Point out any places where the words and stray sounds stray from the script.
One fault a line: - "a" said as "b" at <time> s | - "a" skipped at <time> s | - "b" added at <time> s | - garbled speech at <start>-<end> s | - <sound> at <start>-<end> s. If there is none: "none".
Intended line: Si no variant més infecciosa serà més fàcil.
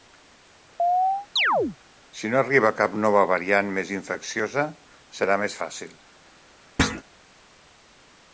- chirp at 0.8-1.8 s
- "arriba cap nova" added at 2.4 s
- thud at 6.8-7.0 s